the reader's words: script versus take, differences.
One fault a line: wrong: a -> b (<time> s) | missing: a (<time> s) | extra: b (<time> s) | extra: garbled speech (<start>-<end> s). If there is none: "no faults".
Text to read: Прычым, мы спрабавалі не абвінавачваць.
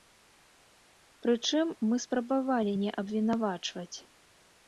no faults